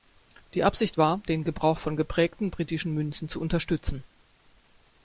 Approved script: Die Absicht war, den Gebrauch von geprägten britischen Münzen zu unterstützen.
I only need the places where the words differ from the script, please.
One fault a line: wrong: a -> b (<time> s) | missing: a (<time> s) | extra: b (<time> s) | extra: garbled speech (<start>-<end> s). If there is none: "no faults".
no faults